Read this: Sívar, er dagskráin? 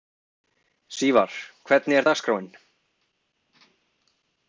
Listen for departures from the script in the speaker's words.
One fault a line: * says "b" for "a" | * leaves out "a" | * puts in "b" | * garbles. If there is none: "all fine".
* puts in "hvernig"